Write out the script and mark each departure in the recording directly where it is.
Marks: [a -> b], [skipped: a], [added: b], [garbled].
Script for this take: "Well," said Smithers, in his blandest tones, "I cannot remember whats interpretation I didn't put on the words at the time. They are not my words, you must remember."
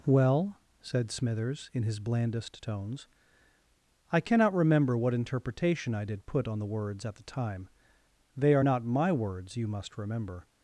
"Well," said Smithers, in his blandest tones, "I cannot remember [whats -> what] interpretation I [didn't -> did] put on the words at the time. They are not my words, you must remember."